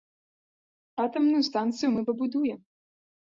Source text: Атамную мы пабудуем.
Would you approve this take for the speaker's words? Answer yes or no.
no